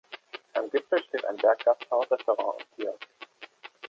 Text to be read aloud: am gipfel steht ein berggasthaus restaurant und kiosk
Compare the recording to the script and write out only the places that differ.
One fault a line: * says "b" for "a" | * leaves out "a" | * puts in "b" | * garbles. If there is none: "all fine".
all fine